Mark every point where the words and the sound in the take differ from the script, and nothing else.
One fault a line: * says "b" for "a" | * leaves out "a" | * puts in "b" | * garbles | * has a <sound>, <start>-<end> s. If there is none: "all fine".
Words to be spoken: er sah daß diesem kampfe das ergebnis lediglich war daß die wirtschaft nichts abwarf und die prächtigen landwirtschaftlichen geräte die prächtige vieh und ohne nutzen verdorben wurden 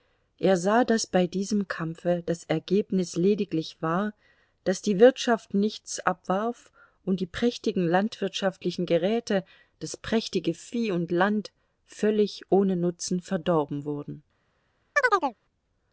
* puts in "bei"
* says "das" for "die"
* puts in "land völlig"
* has a chirp, 15.0-15.4 s